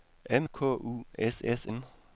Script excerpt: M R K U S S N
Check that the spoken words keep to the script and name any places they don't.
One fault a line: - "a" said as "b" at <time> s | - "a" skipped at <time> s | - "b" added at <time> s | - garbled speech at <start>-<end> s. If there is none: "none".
none